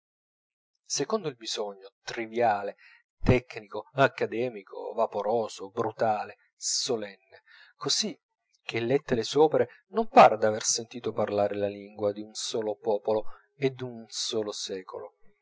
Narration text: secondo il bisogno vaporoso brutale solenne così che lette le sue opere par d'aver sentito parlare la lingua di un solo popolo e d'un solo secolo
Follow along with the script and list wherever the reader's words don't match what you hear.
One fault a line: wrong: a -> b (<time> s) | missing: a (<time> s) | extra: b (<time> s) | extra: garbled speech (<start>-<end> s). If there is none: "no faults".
extra: triviale tecnico accademico (2.0 s)
extra: non (9.9 s)